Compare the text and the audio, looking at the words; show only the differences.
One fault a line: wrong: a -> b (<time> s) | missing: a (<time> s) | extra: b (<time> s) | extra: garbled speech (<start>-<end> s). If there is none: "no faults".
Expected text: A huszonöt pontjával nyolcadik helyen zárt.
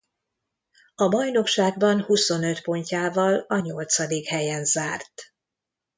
extra: bajnokságban (1.1 s)
extra: a (3.5 s)